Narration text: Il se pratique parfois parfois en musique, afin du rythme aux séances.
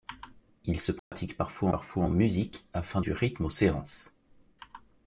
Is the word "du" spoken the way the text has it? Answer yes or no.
yes